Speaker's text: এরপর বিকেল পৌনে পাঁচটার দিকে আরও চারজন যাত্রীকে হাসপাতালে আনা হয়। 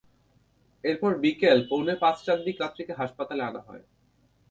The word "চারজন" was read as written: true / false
false